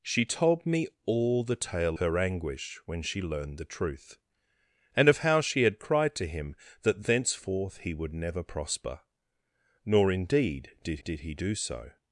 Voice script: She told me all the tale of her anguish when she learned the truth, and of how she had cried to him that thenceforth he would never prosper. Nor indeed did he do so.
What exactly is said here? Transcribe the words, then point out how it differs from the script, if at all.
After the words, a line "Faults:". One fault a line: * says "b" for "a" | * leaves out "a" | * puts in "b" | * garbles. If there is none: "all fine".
She told me all the tale her anguish when she learned the truth, and of how she had cried to him that thenceforth he would never prosper. Nor indeed did did he do so.
Faults:
* leaves out "of"
* puts in "did"